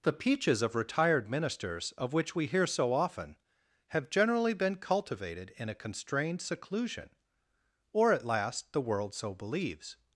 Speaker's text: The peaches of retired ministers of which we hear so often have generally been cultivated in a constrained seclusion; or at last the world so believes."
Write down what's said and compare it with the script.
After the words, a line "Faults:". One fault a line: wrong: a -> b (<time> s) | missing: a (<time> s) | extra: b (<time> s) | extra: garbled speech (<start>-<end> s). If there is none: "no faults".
The peaches of retired ministers of which we hear so often have generally been cultivated in a constrained seclusion; or at last the world so believes."
Faults:
no faults